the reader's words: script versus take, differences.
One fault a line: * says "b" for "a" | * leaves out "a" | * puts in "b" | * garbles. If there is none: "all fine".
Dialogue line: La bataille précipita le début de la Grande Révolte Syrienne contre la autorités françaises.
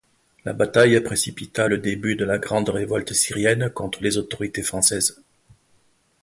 * says "les" for "la"